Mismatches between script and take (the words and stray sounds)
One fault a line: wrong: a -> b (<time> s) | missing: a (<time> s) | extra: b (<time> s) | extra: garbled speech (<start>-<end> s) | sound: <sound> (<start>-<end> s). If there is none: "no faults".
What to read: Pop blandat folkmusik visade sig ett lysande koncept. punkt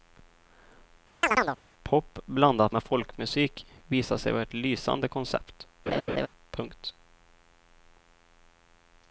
sound: chirp (1.2-1.6 s)
extra: med (2.7 s)
extra: vara (4.3 s)
sound: laugh (5.9-6.3 s)